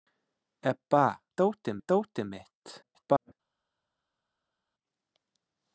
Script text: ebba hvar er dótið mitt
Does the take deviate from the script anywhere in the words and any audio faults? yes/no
yes